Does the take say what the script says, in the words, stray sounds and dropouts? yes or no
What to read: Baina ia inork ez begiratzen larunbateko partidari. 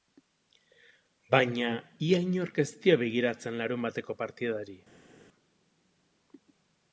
no